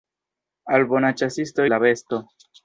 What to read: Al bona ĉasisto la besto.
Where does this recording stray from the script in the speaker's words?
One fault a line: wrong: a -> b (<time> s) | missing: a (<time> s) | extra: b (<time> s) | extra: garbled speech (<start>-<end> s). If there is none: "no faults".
no faults